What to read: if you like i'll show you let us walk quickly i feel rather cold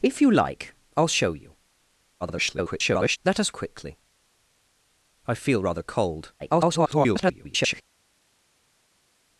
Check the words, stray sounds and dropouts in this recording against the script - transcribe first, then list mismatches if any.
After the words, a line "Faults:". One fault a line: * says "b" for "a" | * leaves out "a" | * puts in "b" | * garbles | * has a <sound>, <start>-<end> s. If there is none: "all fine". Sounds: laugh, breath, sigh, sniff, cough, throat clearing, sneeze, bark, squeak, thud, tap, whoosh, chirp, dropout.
if you like i'll show you [garbled] let us quickly i feel rather cold [garbled]
Faults:
* garbles
* leaves out "walk"
* garbles